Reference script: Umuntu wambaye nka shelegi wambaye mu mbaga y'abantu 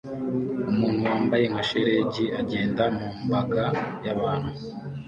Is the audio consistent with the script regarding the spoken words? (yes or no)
no